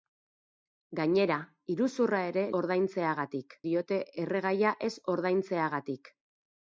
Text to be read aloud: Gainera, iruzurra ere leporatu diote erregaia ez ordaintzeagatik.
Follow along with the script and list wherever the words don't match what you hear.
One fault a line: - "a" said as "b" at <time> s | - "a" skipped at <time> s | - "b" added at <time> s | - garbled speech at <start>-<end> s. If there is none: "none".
- "leporatu" said as "ordaintzeagatik" at 2.6 s